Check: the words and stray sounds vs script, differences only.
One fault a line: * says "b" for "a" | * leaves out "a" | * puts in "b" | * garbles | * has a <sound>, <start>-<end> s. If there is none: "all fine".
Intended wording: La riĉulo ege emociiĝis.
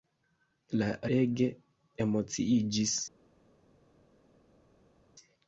* leaves out "riĉulo"